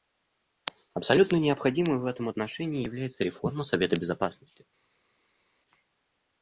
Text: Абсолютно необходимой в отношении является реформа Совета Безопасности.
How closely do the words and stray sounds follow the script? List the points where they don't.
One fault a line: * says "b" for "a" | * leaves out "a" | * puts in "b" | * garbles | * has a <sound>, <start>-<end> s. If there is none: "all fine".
* puts in "этом"